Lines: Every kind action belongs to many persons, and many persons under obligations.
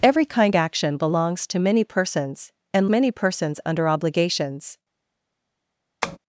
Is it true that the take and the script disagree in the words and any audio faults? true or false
true